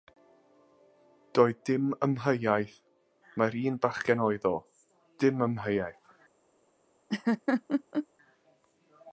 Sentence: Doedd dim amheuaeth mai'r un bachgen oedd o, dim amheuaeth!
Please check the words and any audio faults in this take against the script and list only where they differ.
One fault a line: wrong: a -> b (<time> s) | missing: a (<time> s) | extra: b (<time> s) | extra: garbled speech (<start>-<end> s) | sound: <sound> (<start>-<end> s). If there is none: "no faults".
sound: laugh (7.1-8.1 s)